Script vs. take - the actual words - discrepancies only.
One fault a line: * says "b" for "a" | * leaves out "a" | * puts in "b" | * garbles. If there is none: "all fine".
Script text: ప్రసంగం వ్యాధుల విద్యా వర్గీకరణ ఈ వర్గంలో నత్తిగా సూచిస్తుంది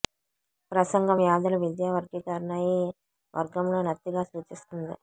all fine